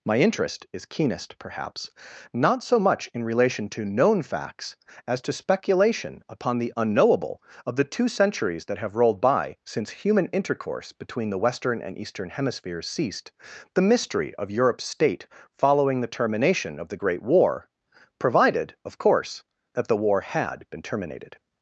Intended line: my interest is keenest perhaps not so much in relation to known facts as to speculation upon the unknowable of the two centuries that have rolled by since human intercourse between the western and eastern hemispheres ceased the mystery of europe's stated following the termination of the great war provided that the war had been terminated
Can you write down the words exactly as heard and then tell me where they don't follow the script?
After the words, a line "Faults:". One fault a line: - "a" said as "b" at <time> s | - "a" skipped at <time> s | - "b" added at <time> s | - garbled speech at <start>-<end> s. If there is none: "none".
my interest is keenest perhaps not so much in relation to known facts as to speculation upon the unknowable of the two centuries that have rolled by since human intercourse between the western and eastern hemispheres ceased the mystery of europe's state following the termination of the great war provided of course that the war had been terminated
Faults:
- "stated" said as "state" at 14.9 s
- "of course" added at 18.9 s